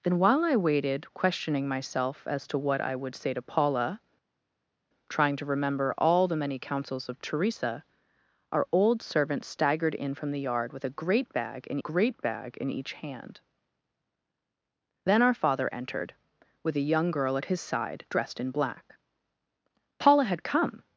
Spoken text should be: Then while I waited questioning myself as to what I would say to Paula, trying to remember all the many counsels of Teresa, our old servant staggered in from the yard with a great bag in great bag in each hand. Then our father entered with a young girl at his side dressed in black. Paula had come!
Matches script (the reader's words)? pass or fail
pass